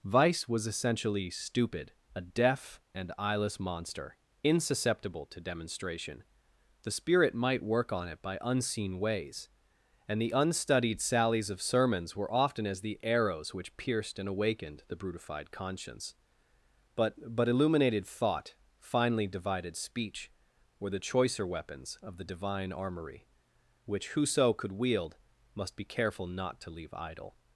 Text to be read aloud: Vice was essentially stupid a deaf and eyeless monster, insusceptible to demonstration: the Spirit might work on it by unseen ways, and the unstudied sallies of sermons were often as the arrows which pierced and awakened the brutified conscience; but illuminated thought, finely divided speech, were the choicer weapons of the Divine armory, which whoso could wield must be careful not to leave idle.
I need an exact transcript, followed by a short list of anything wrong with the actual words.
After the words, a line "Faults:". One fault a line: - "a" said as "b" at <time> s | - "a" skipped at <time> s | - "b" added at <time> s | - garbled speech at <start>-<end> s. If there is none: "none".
Vice was essentially stupid a deaf and eyeless monster, insusceptible to demonstration: the Spirit might work on it by unseen ways, and the unstudied sallies of sermons were often as the arrows which pierced and awakened the brutified conscience; but but illuminated thought, finely divided speech, were the choicer weapons of the Divine armory, which whoso could wield must be careful not to leave idle.
Faults:
- "but" added at 17.4 s